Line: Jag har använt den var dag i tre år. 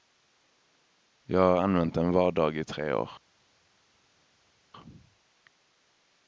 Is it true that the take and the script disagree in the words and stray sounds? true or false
false